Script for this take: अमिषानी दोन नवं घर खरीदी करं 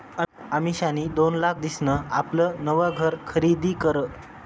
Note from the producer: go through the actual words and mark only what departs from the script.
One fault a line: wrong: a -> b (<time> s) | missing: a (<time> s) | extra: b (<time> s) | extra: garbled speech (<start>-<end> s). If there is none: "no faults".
extra: लाख दिसन आपलं (1.4 s)